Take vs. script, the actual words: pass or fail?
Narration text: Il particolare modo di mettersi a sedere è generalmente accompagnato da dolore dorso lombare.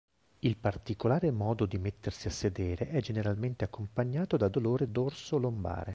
pass